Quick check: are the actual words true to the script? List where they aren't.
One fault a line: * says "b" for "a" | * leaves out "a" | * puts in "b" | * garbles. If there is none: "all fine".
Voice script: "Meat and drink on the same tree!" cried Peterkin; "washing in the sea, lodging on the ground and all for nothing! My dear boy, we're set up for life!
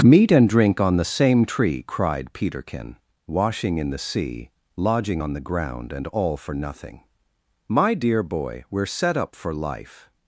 all fine